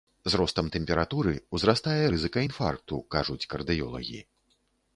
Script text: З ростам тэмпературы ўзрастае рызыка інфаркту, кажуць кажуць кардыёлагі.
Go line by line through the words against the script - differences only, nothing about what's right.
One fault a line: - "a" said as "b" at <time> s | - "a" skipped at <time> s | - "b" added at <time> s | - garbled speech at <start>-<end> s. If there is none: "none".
- "кажуць" skipped at 3.4 s